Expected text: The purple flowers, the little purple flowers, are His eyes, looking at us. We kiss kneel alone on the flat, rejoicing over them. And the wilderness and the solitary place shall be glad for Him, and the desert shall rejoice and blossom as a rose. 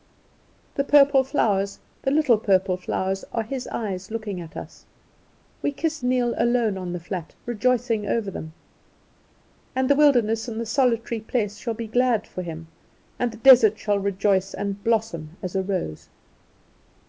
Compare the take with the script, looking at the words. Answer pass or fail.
pass